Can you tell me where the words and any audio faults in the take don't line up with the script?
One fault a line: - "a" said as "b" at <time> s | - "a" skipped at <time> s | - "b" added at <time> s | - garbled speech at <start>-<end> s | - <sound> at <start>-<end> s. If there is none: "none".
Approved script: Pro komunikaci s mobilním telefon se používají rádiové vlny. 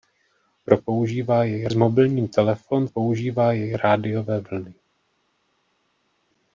- "komunikaci" said as "používají" at 0.8 s
- "se" skipped at 2.9 s